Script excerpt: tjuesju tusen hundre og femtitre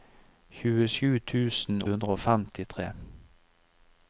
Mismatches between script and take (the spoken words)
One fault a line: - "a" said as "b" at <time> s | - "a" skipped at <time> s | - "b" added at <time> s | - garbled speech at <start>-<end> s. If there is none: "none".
none